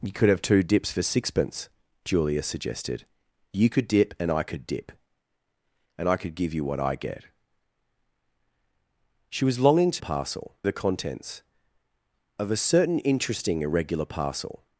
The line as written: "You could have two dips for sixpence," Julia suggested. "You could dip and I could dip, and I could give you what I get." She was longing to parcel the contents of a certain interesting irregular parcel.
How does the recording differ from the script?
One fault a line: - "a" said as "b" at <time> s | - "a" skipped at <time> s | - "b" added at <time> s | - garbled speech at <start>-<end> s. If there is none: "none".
none